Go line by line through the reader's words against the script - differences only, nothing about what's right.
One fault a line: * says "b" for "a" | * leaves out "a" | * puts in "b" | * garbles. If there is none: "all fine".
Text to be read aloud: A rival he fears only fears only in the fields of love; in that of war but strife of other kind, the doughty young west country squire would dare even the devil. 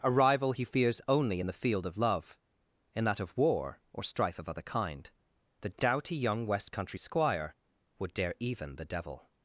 * leaves out "fears only"
* says "field" for "fields"
* says "or" for "but"